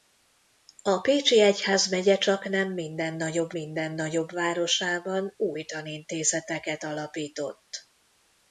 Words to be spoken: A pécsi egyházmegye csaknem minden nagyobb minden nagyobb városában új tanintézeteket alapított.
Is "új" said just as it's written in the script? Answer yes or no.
yes